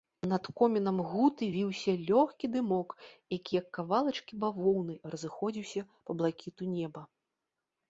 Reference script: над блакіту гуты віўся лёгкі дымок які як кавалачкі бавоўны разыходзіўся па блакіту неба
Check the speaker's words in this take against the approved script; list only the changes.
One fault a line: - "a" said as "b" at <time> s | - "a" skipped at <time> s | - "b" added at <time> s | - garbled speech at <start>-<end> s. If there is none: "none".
- "блакіту" said as "комінам" at 0.6 s